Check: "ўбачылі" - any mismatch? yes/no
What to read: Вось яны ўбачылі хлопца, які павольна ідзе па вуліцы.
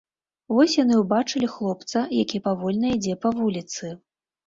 no